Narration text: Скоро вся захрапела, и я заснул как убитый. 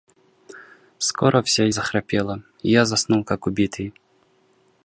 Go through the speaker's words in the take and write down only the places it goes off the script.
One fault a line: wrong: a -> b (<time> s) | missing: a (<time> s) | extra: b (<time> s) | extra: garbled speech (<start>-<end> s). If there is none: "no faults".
no faults